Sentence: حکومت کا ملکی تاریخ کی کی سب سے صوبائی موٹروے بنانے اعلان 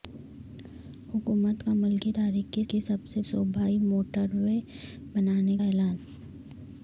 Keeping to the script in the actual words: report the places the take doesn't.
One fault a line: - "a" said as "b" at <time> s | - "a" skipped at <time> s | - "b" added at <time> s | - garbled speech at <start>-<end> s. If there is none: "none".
none